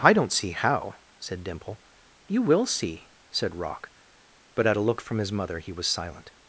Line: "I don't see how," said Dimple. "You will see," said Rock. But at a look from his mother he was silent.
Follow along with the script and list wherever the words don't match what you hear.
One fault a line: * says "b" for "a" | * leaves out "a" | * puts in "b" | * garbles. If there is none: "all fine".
all fine